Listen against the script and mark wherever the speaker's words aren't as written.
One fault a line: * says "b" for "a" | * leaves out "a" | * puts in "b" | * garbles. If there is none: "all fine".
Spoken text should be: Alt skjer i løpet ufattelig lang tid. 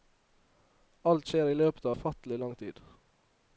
all fine